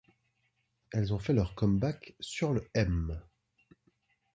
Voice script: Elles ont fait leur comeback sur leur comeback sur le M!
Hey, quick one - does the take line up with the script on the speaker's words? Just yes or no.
no